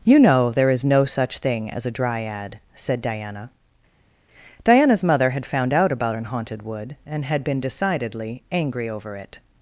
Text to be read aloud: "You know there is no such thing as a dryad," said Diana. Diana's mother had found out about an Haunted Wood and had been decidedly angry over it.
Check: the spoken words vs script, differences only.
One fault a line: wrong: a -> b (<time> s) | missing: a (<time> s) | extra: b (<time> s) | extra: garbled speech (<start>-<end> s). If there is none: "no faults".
no faults